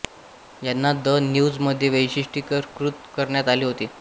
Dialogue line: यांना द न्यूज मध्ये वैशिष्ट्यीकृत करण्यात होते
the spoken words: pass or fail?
fail